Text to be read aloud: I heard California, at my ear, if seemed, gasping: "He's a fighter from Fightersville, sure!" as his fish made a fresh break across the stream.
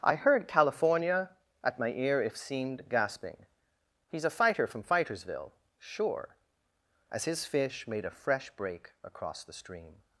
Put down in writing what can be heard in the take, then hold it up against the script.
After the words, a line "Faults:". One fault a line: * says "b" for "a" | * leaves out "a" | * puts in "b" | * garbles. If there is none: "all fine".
I heard California, at my ear, if seemed, gasping: "He's a fighter from Fightersville, sure!" as his fish made a fresh break across the stream.
Faults:
all fine